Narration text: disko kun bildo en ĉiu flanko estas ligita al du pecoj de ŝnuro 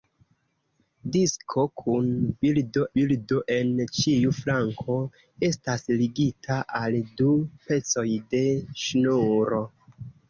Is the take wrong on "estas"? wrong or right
right